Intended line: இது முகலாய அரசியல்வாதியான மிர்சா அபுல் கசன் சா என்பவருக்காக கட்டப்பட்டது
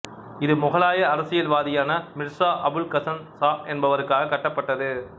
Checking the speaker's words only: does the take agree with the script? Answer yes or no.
yes